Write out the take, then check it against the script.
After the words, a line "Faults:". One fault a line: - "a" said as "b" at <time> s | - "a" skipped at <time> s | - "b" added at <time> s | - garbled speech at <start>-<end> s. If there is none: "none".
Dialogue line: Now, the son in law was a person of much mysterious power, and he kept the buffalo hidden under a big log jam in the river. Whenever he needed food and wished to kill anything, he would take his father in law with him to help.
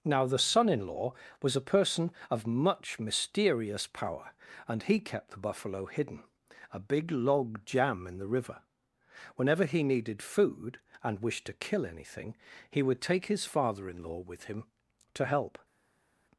Now, the son in law was a person of much mysterious power, and he kept the buffalo hidden a big log jam in the river. Whenever he needed food and wished to kill anything, he would take his father in law with him to help.
Faults:
- "under" skipped at 6.2 s